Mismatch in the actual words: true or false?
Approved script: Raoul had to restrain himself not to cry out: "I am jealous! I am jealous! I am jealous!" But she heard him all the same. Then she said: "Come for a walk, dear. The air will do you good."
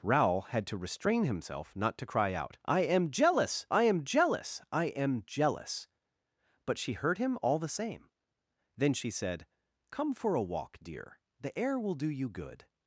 false